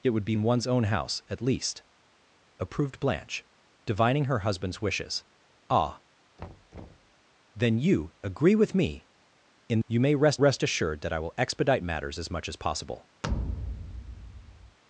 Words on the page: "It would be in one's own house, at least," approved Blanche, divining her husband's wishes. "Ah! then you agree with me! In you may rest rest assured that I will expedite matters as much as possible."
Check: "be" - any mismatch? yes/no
no